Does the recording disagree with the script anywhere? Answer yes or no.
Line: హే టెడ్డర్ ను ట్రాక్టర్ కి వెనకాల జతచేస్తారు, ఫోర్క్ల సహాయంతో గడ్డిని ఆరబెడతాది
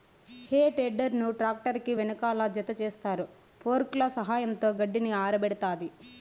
no